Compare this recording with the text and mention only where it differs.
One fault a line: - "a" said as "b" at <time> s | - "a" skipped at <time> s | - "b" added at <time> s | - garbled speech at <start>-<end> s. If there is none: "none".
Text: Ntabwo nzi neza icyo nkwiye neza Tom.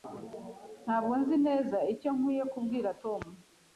- "neza" said as "kubwira" at 2.5 s